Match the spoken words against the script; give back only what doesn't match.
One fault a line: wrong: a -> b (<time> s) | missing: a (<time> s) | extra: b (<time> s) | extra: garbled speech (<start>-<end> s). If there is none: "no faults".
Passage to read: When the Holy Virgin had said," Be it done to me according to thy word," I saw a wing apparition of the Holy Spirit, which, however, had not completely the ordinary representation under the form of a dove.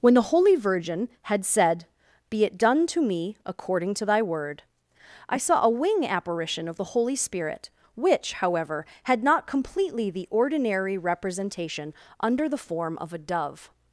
no faults